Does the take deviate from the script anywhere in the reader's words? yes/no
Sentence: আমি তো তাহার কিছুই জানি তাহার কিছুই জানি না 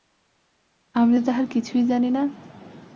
yes